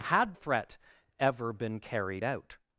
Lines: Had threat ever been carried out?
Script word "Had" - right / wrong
right